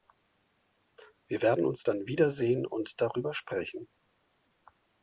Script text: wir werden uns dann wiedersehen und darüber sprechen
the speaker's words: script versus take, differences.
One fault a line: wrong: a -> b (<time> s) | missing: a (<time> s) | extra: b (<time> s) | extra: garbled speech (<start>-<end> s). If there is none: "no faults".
no faults